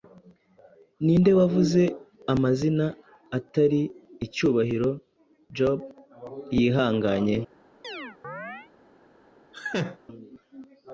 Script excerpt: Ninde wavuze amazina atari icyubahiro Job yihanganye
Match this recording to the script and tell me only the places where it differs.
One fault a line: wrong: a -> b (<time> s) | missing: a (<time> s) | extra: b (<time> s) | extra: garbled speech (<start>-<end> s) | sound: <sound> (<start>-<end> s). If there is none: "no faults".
sound: chirp (7.8-8.7 s)
sound: laugh (9.5-10.0 s)